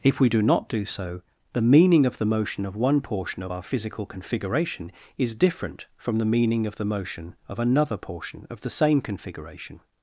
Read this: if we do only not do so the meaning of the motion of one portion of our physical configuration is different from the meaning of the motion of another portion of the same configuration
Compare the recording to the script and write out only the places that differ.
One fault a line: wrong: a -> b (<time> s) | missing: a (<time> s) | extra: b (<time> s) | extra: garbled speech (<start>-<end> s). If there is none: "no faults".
missing: only (0.4 s)